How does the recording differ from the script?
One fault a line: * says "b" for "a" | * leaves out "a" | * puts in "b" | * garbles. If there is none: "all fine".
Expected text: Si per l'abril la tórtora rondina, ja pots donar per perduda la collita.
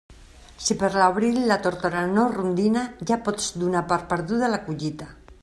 * puts in "no"